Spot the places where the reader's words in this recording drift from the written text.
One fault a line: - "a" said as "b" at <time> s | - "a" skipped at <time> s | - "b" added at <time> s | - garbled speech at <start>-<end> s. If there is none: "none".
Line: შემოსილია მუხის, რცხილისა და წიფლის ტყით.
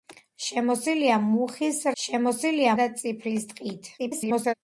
- "რცხილისა" said as "შემოსილია" at 2.0 s
- garbled speech at 4.0-4.5 s